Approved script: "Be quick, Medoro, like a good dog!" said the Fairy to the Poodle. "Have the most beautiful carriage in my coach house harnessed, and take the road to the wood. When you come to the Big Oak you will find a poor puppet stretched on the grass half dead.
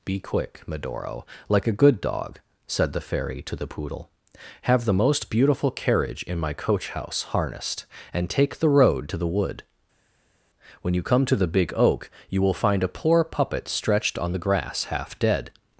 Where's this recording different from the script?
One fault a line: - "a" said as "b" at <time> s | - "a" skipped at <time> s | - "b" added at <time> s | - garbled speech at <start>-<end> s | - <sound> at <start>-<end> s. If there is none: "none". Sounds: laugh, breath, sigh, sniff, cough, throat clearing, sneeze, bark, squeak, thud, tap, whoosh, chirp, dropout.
none